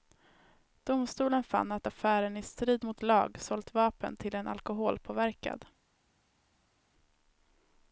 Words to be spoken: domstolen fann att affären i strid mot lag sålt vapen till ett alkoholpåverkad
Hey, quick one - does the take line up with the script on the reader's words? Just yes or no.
no